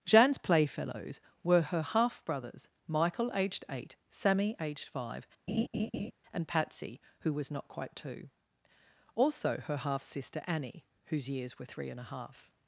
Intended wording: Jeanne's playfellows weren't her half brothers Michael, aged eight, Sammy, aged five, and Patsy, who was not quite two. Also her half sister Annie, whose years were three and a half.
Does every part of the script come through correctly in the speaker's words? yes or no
no